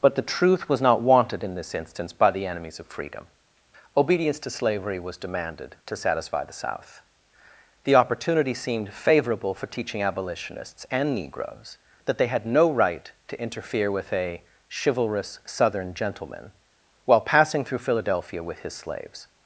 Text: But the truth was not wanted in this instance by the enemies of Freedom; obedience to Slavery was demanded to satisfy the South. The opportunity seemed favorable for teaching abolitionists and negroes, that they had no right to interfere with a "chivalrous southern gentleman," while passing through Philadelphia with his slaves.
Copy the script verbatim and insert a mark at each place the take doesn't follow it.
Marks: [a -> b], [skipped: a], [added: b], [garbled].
But the truth was not wanted in this instance by the enemies of Freedom; obedience to Slavery was demanded to satisfy the South. The opportunity seemed favorable for teaching abolitionists and negroes, that they had no right to interfere with a "chivalrous southern gentleman," while passing through Philadelphia with his slaves.